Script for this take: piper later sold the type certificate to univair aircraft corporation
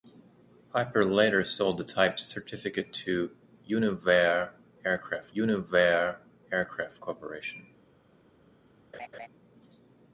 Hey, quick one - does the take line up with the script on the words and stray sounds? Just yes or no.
no